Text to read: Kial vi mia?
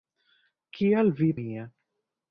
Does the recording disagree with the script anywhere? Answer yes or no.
no